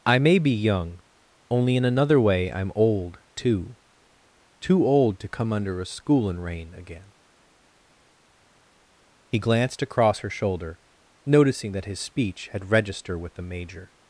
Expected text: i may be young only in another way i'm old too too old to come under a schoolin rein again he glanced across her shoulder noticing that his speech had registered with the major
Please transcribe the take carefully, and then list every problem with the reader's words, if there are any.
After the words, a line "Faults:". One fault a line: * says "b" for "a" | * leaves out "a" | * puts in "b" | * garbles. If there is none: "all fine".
i may be young only in another way i'm old too too old to come under a schoolin rein again he glanced across her shoulder noticing that his speech had register with the major
Faults:
* says "register" for "registered"